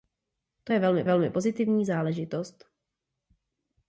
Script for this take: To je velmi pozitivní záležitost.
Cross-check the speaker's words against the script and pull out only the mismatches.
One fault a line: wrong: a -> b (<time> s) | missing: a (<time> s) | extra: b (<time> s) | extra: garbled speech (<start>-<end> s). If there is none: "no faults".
extra: velmi (1.0 s)